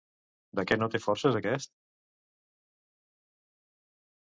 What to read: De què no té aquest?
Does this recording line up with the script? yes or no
no